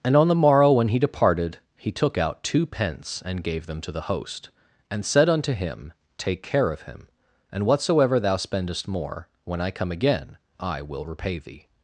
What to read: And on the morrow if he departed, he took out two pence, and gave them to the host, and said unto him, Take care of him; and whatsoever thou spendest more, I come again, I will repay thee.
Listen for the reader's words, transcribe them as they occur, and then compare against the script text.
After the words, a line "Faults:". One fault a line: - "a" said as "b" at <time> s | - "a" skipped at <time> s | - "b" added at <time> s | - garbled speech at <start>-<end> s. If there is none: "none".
And on the morrow when he departed, he took out two pence, and gave them to the host, and said unto him, Take care of him; and whatsoever thou spendest more, when I come again, I will repay thee.
Faults:
- "if" said as "when" at 0.7 s
- "when" added at 9.4 s